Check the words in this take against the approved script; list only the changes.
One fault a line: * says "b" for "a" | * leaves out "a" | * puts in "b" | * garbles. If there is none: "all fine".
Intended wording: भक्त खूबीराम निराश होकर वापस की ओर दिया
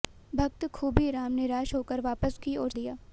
all fine